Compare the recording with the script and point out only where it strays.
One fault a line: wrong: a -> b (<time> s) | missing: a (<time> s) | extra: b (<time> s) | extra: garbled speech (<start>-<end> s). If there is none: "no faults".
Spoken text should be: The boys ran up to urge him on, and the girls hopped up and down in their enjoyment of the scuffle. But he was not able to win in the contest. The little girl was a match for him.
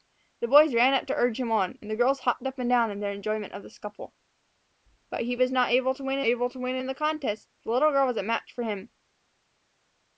extra: able to win (6.3 s)